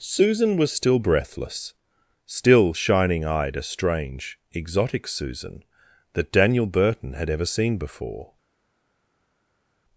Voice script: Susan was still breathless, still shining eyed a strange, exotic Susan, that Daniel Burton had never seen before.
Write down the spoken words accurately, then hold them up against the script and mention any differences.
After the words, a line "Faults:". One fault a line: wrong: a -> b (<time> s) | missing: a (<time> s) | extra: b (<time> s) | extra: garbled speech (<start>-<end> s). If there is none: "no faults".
Susan was still breathless, still shining eyed a strange, exotic Susan, that Daniel Burton had ever seen before.
Faults:
wrong: never -> ever (7.3 s)